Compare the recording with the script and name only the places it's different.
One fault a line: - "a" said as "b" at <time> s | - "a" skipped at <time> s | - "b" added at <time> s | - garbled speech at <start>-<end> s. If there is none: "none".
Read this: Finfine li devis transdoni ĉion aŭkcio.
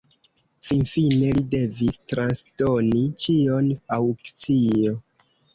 none